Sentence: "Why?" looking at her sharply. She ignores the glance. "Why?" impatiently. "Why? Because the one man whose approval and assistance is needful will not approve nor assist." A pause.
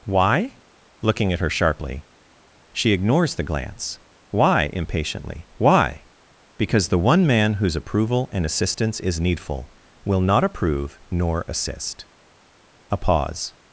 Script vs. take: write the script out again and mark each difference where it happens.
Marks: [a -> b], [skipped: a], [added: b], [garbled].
"Why?" looking at her sharply. She ignores the glance. "Why?" impatiently. "Why? Because the one man whose approval and assistance is needful will not approve nor assist." A pause.